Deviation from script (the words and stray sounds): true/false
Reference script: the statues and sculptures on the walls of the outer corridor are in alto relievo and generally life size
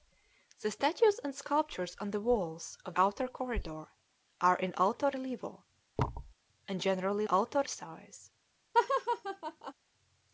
true